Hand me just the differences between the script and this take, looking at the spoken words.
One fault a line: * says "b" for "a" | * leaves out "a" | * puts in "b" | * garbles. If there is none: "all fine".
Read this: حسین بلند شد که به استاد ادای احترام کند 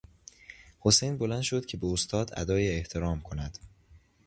all fine